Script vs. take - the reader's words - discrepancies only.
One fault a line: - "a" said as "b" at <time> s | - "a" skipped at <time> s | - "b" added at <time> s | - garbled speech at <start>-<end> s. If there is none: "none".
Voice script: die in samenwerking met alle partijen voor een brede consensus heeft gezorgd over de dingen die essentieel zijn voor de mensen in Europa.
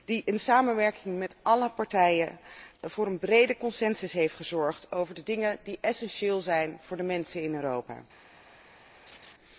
none